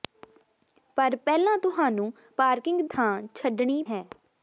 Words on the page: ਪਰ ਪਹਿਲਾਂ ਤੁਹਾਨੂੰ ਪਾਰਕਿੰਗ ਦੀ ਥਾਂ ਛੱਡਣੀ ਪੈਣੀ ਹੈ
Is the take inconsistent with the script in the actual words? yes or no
yes